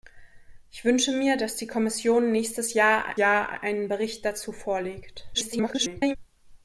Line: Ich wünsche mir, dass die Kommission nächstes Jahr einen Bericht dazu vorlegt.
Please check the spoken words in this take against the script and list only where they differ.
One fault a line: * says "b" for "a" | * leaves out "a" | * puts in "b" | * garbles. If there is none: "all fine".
* puts in "Jahr"
* garbles